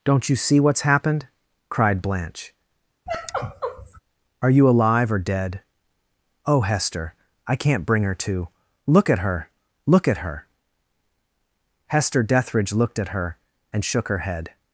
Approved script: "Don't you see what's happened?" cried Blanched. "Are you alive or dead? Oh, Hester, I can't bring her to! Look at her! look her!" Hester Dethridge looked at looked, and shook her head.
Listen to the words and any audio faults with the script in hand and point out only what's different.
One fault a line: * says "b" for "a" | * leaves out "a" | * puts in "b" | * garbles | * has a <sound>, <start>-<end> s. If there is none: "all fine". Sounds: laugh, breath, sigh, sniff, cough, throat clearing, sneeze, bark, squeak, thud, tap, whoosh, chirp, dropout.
* says "Blanche" for "Blanched"
* has a sigh, 3.1-4.0 s
* puts in "at"
* says "her" for "looked"